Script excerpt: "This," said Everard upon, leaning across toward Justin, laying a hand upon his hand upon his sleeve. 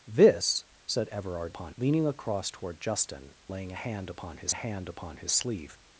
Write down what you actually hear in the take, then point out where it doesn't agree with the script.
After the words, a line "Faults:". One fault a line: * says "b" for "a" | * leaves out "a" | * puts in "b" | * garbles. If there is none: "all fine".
"This," said Everard upon, leaning across toward Justin, laying a hand upon his hand upon his sleeve.
Faults:
all fine